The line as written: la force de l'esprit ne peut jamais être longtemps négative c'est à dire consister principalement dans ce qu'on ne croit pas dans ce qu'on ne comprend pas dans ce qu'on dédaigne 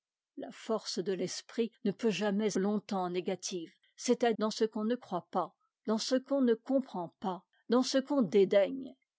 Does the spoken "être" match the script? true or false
false